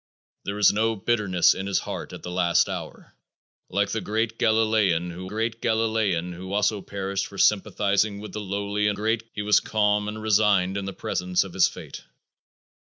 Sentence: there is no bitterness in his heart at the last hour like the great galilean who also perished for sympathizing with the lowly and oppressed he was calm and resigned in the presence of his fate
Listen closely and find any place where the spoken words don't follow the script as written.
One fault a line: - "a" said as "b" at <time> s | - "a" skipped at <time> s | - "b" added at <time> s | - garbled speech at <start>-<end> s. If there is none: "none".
- "great galilean who" added at 5.2 s
- "oppressed" said as "great" at 8.9 s